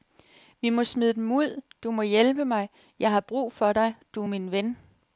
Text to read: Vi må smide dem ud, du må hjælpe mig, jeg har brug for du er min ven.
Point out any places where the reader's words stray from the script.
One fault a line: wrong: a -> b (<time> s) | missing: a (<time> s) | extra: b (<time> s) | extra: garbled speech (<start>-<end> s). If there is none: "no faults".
extra: dig (3.7 s)